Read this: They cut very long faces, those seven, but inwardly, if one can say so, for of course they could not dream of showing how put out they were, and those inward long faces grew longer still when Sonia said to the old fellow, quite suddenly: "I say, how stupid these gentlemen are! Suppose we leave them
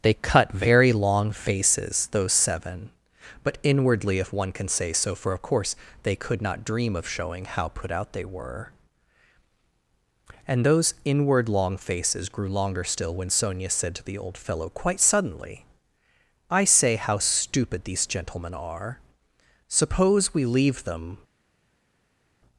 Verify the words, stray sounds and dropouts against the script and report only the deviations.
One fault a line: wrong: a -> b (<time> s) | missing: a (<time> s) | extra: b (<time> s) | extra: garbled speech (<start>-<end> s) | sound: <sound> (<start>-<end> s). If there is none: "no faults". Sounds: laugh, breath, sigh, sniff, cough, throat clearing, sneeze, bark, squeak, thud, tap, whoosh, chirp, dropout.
no faults